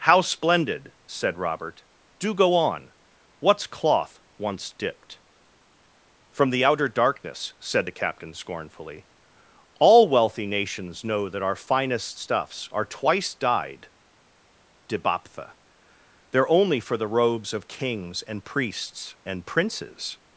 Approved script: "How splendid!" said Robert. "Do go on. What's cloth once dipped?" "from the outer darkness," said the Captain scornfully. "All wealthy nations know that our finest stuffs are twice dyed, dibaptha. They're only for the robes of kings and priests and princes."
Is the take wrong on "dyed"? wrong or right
right